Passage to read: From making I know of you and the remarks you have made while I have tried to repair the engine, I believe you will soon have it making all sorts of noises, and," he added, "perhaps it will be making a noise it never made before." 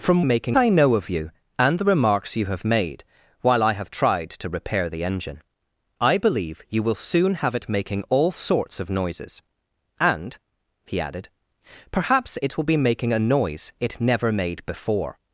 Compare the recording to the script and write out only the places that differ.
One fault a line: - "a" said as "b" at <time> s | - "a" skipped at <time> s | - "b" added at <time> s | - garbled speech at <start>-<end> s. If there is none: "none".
none